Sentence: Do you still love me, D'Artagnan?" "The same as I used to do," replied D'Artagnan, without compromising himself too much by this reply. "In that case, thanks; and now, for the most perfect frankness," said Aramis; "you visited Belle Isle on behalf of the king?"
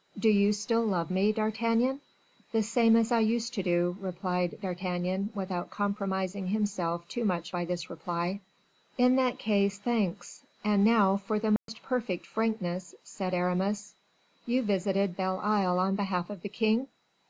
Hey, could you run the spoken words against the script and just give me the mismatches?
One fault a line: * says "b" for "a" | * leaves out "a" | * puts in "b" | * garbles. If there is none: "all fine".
all fine